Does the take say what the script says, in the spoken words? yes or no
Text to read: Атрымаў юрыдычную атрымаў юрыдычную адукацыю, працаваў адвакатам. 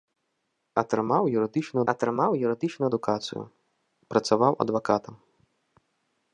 yes